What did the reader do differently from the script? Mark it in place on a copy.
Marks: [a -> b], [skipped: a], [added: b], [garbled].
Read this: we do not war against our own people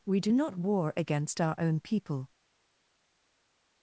we do not war against our own people